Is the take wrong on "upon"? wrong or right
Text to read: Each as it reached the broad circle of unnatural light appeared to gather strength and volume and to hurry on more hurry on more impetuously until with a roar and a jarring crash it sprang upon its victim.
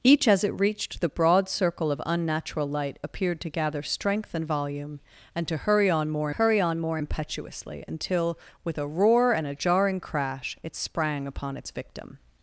right